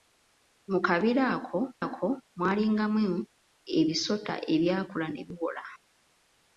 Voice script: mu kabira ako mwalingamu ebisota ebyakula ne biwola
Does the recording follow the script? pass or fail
fail